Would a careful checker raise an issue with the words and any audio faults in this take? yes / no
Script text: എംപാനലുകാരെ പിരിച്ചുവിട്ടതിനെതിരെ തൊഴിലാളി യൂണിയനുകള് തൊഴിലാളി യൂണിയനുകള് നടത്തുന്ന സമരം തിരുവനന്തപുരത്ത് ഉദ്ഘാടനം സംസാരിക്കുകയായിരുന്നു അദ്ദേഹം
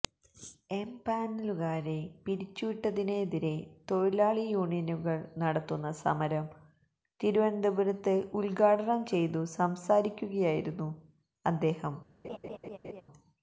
yes